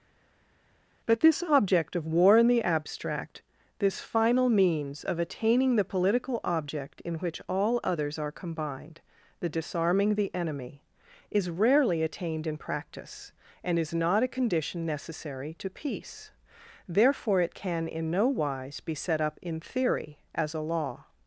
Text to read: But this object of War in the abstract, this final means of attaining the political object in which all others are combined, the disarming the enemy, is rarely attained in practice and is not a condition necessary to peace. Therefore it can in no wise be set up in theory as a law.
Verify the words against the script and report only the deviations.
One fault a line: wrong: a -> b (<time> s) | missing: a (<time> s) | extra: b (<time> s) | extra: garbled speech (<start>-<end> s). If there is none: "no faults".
no faults